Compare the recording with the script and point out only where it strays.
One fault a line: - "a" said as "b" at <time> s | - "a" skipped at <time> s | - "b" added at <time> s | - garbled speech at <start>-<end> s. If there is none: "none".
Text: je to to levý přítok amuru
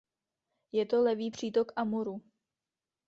- "to" skipped at 1.0 s